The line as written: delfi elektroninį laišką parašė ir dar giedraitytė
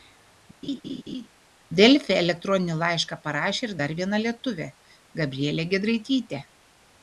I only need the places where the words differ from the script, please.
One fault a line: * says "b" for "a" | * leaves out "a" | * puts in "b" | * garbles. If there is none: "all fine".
* puts in "viena lietuvė gabrielė"